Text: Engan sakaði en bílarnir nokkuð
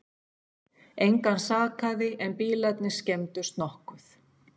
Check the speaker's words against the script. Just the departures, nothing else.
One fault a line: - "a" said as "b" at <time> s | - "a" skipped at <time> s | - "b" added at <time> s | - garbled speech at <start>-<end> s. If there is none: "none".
- "skemmdust" added at 3.0 s